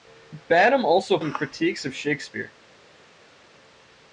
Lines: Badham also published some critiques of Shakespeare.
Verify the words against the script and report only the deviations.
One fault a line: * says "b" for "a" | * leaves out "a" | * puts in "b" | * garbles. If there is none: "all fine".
* leaves out "published"